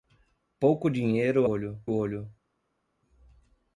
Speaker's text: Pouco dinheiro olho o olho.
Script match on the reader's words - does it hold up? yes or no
yes